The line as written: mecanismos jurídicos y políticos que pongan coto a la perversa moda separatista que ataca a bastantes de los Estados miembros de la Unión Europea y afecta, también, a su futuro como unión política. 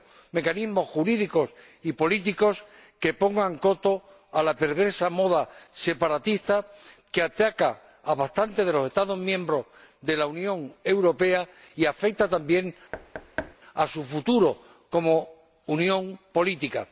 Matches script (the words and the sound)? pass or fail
fail